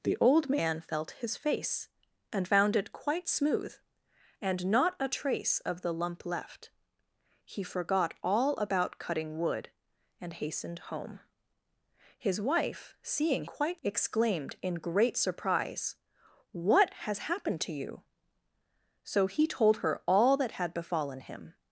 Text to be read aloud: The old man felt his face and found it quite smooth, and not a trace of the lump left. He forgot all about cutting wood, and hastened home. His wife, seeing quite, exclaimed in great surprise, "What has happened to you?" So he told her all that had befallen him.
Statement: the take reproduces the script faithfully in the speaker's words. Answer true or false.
true